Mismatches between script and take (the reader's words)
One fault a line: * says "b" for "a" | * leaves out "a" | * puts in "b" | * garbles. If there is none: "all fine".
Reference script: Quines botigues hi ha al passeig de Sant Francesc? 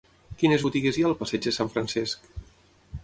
all fine